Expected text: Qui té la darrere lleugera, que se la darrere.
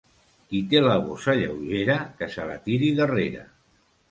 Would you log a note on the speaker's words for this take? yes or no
yes